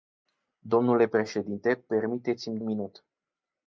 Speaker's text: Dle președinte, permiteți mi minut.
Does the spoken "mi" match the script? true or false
true